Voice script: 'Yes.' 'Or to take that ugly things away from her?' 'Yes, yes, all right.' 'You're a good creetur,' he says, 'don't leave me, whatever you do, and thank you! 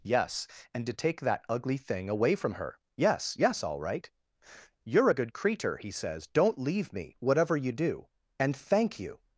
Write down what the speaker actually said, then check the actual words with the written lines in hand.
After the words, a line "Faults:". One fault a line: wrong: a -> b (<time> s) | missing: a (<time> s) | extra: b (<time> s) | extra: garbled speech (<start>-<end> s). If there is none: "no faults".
'Yes.' 'And to take that ugly thing away from her?' 'Yes, yes, all right.' 'You're a good creetur,' he says, 'don't leave me, whatever you do, and thank you!
Faults:
wrong: Or -> And (0.7 s)
wrong: things -> thing (1.8 s)